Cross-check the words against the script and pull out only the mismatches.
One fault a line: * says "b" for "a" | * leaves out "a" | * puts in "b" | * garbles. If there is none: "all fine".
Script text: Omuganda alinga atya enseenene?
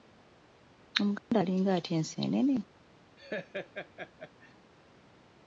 all fine